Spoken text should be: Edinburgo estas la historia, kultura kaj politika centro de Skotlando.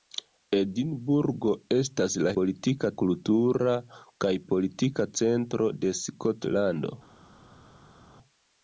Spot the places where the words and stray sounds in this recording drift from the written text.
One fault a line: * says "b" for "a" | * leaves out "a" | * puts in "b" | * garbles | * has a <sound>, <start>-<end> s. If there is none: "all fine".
* says "politika" for "historia"